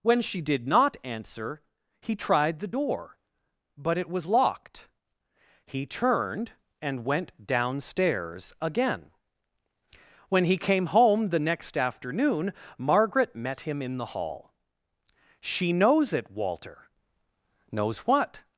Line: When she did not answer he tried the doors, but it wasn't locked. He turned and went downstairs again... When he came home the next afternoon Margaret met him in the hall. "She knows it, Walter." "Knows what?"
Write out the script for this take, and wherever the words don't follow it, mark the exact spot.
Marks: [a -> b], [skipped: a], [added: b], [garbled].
When she did not answer he tried the [doors, -> door] but it [wasn't -> was] locked. He turned and went downstairs again... When he came home the next afternoon Margaret met him in the hall. "She knows it, Walter." "Knows what?"